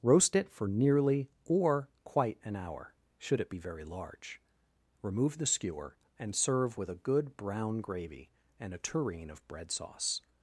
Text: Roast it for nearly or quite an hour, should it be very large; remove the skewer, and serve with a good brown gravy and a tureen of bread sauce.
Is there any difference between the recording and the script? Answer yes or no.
no